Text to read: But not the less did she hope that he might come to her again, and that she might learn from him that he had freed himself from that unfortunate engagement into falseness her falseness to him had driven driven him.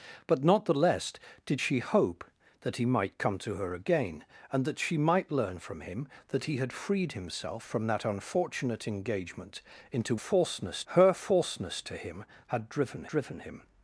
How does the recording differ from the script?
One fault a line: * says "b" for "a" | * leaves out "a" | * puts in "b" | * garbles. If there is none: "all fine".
all fine